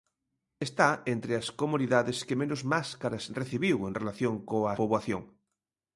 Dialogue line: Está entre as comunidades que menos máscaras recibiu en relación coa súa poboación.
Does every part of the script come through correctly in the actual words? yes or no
no